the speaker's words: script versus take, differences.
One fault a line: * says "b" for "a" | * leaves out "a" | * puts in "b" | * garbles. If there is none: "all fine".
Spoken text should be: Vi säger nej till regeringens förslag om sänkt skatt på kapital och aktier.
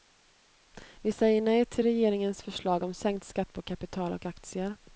all fine